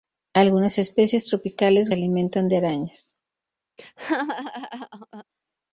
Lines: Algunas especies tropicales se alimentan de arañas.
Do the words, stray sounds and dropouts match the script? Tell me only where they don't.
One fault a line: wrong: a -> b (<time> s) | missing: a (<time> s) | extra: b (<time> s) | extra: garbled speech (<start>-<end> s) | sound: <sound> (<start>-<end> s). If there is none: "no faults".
sound: laugh (3.8-5.2 s)